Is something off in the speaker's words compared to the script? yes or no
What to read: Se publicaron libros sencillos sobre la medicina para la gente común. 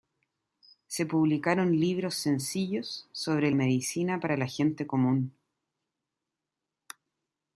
yes